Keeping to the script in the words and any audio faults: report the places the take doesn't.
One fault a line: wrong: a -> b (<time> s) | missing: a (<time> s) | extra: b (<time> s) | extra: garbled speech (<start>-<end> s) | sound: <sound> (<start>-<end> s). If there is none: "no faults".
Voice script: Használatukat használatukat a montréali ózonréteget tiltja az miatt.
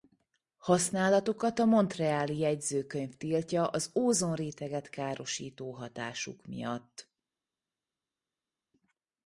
missing: használatukat (1.6 s)
wrong: ózonréteget -> jegyzőkönyv (2.4 s)
extra: ózonréteget károsító hatásuk (4.0 s)